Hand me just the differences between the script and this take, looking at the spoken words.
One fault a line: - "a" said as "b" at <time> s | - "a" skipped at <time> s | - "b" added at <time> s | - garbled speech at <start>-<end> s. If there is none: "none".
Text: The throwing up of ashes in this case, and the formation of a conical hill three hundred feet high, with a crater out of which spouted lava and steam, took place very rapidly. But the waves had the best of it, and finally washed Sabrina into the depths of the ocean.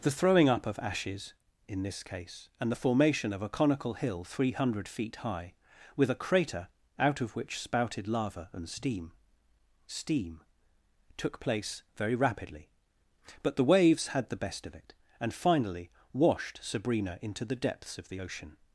- "steam" added at 9.9 s